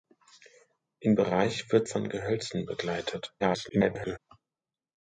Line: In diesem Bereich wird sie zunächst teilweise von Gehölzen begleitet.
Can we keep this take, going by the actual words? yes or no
no